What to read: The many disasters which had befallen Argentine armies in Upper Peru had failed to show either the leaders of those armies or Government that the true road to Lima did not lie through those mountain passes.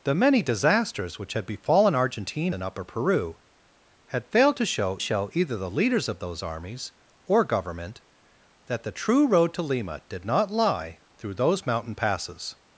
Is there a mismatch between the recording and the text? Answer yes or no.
yes